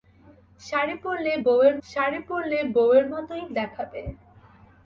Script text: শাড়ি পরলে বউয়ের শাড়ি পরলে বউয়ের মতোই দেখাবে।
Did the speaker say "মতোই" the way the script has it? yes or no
yes